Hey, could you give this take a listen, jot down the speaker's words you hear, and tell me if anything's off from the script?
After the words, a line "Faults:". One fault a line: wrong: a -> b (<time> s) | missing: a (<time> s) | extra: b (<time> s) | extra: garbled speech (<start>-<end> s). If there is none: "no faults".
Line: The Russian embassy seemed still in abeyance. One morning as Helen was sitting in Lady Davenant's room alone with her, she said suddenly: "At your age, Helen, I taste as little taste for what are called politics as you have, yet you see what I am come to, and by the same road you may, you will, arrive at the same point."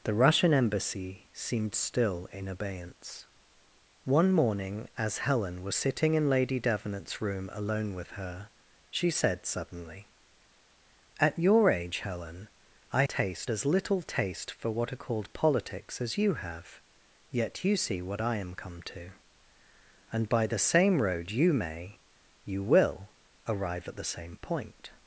The Russian embassy seemed still in abeyance. One morning as Helen was sitting in Lady Davenant's room alone with her, she said suddenly: "At your age, Helen, I taste as little taste for what are called politics as you have, yet you see what I am come to, and by the same road you may, you will, arrive at the same point."
Faults:
no faults